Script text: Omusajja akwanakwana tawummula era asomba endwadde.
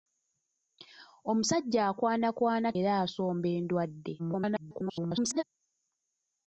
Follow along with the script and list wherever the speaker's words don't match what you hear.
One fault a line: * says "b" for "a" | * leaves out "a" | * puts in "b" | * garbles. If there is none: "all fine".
* leaves out "tawummula"
* garbles